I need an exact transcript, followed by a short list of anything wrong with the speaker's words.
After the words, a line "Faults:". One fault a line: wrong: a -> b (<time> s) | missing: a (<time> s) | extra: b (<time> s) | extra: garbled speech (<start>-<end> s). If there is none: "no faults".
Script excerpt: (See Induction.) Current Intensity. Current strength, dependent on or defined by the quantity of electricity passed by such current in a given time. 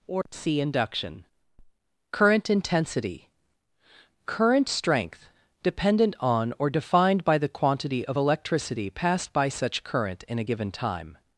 (Or c Induction.) Current Intensity. Current strength, dependent on or defined by the quantity of electricity passed by such current in a given time.
Faults:
wrong: See -> Or c (0.1 s)